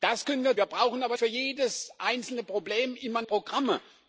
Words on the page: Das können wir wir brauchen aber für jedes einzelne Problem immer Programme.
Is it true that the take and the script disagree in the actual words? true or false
false